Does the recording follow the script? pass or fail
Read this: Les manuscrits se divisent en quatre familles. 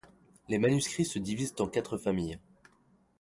pass